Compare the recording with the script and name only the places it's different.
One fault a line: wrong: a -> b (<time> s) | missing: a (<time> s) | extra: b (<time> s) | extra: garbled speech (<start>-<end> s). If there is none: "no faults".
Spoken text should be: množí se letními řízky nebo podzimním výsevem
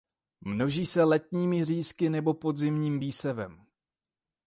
no faults